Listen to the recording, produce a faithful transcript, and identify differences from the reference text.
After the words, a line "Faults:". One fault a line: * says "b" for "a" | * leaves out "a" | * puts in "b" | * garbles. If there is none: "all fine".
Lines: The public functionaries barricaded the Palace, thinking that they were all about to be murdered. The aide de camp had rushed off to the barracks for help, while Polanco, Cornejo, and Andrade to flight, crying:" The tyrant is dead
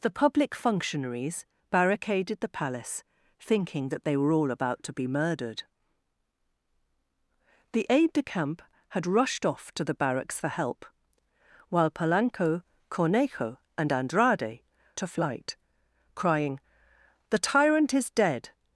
The public functionaries barricaded the Palace, thinking that they were all about to be murdered. The aide de camp had rushed off to the barracks for help, while Polanco, Cornejo, and Andrade to flight, crying:" The tyrant is dead
Faults:
all fine